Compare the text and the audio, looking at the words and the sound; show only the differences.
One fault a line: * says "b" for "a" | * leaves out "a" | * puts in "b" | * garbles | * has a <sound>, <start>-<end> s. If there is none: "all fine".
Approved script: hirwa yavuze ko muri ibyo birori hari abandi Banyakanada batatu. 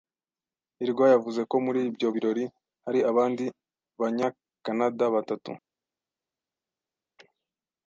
all fine